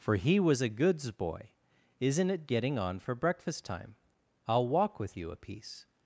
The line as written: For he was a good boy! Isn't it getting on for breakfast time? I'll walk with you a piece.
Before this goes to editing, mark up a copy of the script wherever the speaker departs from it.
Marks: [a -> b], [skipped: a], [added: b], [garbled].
For he was a [good -> goods] boy! Isn't it getting on for breakfast time? I'll walk with you a piece.